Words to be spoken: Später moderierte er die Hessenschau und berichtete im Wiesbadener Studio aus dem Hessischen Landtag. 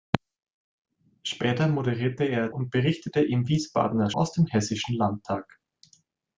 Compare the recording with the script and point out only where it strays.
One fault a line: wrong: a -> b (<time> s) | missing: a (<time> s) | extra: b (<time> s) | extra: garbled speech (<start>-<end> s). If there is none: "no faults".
missing: die Hessenschau (2.5 s)
missing: Studio (4.1 s)